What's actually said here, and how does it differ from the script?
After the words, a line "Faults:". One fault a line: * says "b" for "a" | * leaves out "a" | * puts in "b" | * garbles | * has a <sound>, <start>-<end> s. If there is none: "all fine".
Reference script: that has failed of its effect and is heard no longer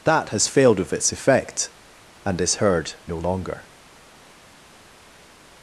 that has failed of its effect and is heard no longer
Faults:
all fine